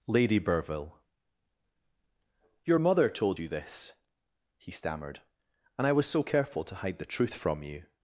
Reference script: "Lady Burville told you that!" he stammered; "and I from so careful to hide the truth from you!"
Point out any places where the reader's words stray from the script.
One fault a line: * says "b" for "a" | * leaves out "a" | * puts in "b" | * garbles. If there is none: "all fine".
* puts in "your mother"
* says "this" for "that"
* says "was" for "from"